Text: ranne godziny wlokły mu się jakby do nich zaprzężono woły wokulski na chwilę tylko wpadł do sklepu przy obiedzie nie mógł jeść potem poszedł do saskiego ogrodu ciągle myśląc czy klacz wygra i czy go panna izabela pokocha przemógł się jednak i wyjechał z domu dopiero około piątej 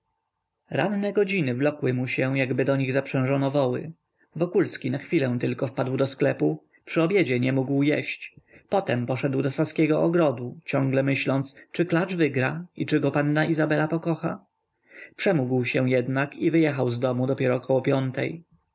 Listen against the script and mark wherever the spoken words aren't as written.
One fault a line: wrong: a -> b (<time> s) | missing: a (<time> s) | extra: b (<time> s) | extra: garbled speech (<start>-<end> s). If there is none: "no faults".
no faults